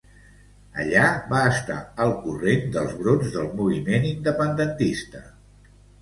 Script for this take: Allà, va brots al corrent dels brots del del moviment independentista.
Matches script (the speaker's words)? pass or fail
fail